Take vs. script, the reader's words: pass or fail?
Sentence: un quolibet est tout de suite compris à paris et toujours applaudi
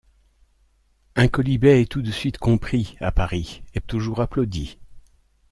pass